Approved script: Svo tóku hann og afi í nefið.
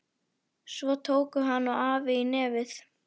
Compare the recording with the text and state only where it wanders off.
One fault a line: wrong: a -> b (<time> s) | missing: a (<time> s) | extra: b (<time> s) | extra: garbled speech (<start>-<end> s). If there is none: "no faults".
no faults